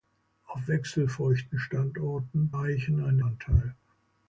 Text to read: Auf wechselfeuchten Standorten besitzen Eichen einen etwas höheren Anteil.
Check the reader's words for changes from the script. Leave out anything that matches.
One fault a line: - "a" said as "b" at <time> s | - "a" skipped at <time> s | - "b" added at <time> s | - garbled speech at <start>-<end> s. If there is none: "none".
- "besitzen" skipped at 2.5 s
- "etwas höheren" skipped at 3.2 s